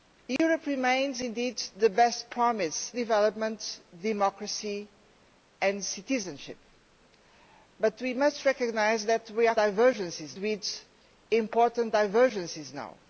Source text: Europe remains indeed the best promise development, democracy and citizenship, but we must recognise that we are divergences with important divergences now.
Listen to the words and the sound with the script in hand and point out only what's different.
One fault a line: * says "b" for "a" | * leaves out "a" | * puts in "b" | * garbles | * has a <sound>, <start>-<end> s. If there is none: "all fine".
* has a dropout, 0.4-0.4 s